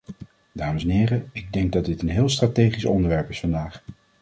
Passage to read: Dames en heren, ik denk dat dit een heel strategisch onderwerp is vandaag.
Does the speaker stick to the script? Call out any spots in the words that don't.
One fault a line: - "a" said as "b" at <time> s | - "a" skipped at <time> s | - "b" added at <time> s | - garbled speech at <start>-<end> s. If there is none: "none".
none